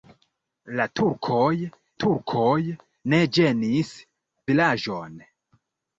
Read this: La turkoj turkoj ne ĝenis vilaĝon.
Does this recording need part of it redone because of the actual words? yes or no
no